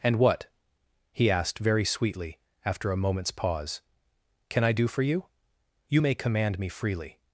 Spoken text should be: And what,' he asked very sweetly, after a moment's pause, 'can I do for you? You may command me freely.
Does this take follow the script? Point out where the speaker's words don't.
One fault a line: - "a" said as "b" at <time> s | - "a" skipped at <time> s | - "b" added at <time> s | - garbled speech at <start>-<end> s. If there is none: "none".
none